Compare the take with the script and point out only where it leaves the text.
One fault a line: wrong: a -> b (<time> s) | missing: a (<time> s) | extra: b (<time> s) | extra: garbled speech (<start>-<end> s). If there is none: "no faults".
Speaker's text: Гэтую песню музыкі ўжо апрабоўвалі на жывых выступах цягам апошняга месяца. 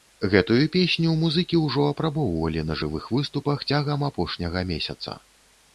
no faults